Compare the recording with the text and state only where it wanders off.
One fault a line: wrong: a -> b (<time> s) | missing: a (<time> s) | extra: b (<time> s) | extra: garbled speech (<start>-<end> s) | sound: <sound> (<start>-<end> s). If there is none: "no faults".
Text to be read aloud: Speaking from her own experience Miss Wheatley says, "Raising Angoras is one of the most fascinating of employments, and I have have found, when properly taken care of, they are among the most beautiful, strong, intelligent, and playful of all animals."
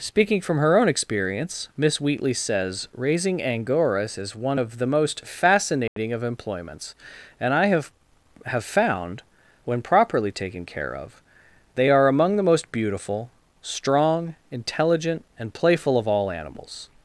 sound: dropout (5.9-6.0 s)